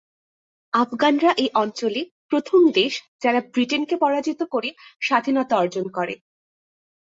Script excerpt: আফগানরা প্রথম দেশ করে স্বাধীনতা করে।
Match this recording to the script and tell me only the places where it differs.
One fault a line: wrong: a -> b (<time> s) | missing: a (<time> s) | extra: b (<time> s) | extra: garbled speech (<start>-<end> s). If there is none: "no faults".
extra: এই অঞ্চলে (1.4 s)
extra: যারা ব্রিটেনকে পরাজিত (3.2 s)
extra: অর্জন (5.6 s)